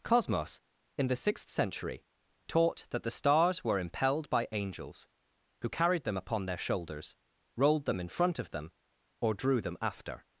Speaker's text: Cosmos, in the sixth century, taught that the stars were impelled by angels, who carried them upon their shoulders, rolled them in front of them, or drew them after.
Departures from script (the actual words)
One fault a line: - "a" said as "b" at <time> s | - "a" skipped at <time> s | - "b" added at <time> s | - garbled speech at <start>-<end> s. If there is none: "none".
none